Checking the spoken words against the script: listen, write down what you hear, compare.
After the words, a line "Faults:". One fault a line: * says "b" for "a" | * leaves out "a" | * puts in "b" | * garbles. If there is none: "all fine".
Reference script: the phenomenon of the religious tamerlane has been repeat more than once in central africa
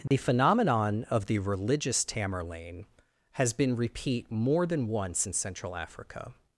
the phenomenon of the religious tamerlane has been repeat more than once in central africa
Faults:
all fine